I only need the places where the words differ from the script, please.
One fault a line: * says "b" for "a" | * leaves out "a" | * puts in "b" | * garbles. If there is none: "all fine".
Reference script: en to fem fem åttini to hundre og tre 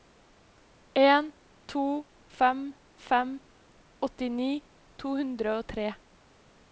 all fine